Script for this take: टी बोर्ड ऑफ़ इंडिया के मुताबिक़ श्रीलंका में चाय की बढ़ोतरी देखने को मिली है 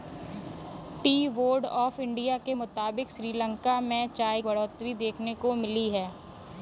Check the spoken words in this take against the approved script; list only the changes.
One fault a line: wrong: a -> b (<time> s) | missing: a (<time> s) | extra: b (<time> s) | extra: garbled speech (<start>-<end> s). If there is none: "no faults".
missing: की (4.4 s)